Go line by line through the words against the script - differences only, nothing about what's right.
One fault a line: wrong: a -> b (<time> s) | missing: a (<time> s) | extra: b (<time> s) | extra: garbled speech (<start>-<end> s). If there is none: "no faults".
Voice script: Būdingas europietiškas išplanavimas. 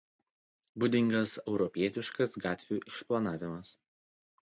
extra: gatvių (2.5 s)